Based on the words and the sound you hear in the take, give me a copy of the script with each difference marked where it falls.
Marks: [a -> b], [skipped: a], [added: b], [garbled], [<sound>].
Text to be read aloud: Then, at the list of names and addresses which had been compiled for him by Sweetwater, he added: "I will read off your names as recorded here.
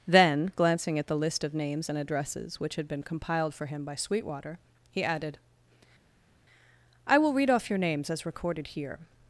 Then, [added: glancing] at the list of names and addresses which had been compiled for him by Sweetwater, he added: "I will read off your names as recorded here.